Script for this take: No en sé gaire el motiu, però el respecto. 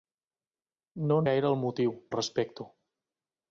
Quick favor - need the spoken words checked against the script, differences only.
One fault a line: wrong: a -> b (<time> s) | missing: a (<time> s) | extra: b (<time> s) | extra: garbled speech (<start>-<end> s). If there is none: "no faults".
missing: sé (1.3 s)
missing: però (1.9 s)